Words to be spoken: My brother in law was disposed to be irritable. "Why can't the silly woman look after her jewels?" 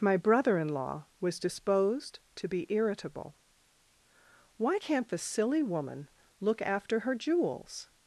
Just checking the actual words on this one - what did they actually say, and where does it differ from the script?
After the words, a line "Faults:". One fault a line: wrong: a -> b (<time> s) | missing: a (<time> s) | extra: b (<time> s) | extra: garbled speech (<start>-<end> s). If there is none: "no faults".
My brother in law was disposed to be irritable. "Why can't the silly woman look after her jewels?"
Faults:
no faults